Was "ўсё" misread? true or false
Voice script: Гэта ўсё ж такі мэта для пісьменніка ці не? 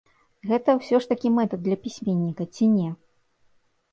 false